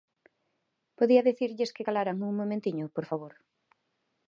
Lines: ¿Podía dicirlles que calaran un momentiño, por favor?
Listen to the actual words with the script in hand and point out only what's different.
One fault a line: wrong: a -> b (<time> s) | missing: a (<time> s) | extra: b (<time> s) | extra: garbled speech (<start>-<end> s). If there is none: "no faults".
no faults